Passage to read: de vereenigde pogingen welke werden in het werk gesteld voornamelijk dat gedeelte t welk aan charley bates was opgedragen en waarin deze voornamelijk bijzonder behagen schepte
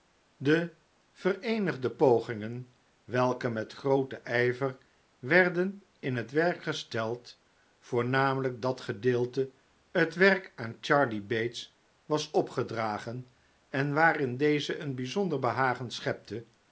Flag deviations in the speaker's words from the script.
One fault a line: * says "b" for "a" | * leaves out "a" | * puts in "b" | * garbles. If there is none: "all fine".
* puts in "met grooten ijver"
* says "een" for "voornamelijk"